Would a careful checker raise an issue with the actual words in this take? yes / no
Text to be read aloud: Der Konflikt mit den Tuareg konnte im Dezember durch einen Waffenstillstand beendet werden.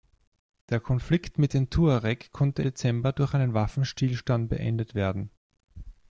yes